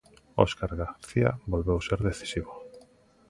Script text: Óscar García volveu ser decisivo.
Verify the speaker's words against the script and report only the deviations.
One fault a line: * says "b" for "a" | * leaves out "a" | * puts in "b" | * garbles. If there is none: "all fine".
all fine